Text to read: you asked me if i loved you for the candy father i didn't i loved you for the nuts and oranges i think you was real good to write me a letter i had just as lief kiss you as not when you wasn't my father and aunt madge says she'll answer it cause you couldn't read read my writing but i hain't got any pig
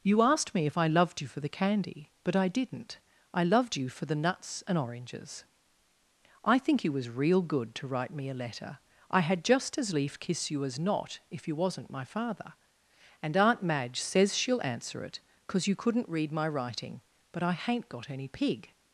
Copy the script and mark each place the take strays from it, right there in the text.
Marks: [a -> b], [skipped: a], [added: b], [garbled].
you asked me if i loved you for the candy [father -> but] i didn't i loved you for the nuts and oranges i think you was real good to write me a letter i had just as lief kiss you as not [when -> if] you wasn't my father and aunt madge says she'll answer it cause you couldn't read [skipped: read] my writing but i hain't got any pig